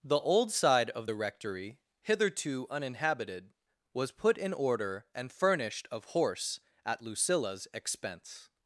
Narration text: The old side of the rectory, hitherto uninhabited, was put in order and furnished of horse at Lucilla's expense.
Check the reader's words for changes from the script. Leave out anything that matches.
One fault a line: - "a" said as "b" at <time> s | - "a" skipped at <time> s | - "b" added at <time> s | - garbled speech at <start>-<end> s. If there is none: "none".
none